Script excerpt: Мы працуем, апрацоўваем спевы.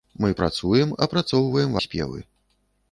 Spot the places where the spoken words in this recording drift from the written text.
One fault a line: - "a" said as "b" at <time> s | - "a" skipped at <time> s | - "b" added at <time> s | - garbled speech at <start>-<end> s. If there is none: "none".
none